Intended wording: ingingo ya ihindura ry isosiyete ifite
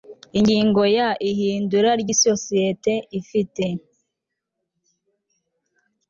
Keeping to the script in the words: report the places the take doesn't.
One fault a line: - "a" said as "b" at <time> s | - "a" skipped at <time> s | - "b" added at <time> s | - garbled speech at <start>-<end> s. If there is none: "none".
none